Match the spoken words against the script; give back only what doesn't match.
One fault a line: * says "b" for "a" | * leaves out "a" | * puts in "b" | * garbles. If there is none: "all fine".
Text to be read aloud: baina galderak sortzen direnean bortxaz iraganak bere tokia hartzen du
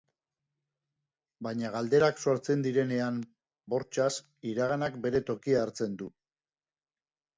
all fine